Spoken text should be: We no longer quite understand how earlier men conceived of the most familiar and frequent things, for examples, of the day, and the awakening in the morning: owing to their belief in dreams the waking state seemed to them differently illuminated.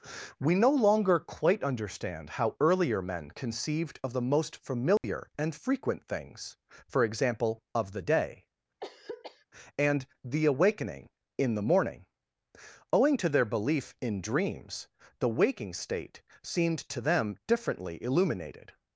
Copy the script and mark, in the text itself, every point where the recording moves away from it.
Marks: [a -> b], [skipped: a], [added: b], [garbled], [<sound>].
We no longer quite understand how earlier men conceived of the most familiar [dropout] and frequent things, for [examples, -> example] of the day, [throat clearing] and the awakening in the morning: owing to their belief in dreams the waking state seemed to them differently illuminated.